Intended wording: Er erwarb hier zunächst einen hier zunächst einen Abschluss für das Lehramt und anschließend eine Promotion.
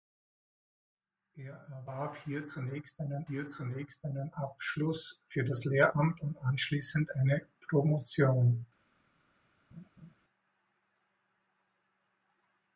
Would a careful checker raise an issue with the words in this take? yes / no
no